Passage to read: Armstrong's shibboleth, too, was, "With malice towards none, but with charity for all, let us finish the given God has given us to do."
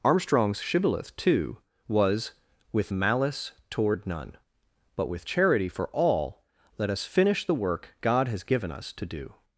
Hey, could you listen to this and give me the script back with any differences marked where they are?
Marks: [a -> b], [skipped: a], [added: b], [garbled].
Armstrong's shibboleth, too, was, "With malice [towards -> toward] none, but with charity for all, let us finish the [given -> work] God has given us to do."